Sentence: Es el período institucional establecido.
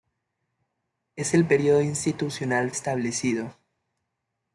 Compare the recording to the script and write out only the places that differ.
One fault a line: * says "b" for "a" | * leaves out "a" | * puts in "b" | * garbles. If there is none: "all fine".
all fine